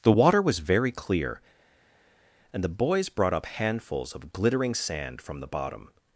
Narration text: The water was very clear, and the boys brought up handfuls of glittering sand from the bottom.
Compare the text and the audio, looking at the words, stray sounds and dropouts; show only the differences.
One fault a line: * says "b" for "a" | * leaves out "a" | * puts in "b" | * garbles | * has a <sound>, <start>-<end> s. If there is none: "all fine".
all fine